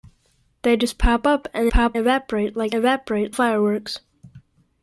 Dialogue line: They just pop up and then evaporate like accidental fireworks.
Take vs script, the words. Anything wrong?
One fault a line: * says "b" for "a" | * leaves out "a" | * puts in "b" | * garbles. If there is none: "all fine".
* says "pop" for "then"
* says "evaporate" for "accidental"